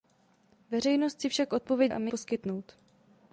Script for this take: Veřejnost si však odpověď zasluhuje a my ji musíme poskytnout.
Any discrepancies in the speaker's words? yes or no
yes